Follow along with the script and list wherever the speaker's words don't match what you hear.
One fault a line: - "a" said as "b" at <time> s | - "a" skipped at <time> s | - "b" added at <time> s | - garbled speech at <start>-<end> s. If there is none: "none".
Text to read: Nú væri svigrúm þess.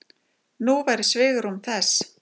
none